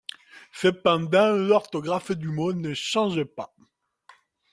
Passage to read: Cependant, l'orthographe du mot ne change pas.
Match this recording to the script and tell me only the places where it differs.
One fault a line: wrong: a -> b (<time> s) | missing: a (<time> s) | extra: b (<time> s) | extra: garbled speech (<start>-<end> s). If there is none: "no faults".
no faults